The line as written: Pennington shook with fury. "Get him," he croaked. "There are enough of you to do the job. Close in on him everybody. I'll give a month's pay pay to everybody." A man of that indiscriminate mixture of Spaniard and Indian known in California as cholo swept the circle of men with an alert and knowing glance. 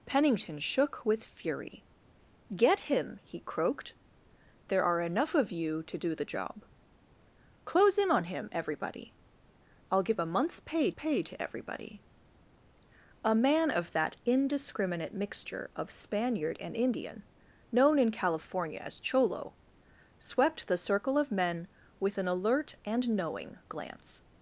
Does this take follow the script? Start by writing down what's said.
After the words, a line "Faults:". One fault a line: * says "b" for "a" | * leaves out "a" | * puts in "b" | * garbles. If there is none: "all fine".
Pennington shook with fury. "Get him," he croaked. "There are enough of you to do the job. Close in on him everybody. I'll give a month's pay pay to everybody." A man of that indiscriminate mixture of Spaniard and Indian known in California as cholo swept the circle of men with an alert and knowing glance.
Faults:
all fine